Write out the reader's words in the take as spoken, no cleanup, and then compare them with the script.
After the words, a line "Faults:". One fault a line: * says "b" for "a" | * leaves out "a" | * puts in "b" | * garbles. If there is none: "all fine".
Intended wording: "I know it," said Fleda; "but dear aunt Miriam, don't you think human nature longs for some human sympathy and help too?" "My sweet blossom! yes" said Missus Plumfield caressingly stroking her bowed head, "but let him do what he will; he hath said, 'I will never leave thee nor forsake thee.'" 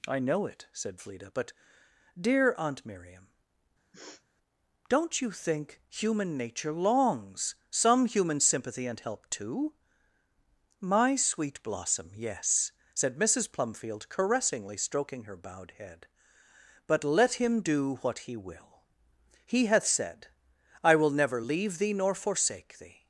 "I know it," said Fleda; "but dear aunt Miriam, don't you think human nature longs some human sympathy and help too?" "My sweet blossom! yes" said Missus Plumfield caressingly stroking her bowed head, "but let him do what he will; he hath said, 'I will never leave thee nor forsake thee.'"
Faults:
* leaves out "for"